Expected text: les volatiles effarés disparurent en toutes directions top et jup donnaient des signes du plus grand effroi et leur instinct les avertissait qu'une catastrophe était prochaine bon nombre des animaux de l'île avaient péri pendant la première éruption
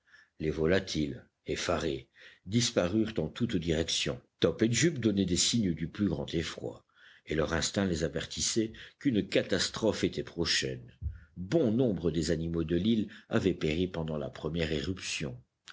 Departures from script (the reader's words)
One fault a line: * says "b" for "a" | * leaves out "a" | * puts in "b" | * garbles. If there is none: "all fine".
all fine